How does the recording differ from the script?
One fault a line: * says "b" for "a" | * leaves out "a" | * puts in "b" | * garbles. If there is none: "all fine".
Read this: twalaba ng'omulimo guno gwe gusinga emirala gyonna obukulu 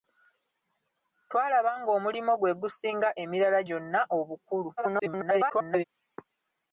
* leaves out "guno"
* garbles